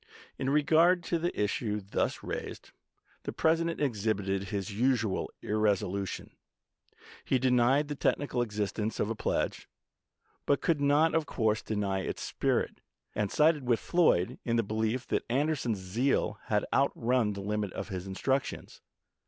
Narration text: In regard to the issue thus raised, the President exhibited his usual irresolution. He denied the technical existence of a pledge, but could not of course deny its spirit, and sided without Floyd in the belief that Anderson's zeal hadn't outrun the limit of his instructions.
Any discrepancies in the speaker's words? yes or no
yes